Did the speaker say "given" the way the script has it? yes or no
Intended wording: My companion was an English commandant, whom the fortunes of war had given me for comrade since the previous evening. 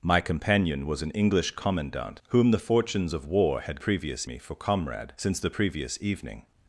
no